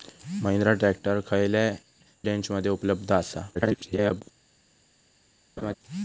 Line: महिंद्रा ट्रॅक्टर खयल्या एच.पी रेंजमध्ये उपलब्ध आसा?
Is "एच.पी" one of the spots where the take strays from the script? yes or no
yes